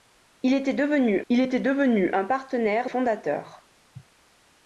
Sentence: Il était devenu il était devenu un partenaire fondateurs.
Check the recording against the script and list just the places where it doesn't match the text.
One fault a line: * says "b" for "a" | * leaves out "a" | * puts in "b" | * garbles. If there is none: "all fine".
all fine